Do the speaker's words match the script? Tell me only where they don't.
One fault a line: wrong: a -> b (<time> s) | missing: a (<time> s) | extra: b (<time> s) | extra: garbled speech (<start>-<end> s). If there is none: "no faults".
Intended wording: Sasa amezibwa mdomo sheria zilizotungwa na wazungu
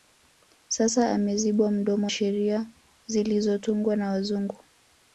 no faults